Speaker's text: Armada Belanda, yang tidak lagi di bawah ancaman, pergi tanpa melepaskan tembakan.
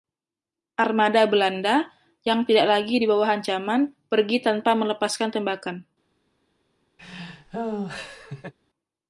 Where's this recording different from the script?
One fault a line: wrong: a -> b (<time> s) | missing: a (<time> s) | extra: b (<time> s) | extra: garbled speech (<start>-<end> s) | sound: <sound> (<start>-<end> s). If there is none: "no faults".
sound: laugh (7.0-8.5 s)